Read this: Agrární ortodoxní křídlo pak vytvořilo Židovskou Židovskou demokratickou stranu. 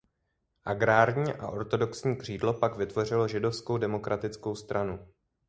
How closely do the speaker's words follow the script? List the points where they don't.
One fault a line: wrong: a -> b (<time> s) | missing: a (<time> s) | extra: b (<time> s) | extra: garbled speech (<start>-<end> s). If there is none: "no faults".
extra: a (1.3 s)
missing: Židovskou (3.8 s)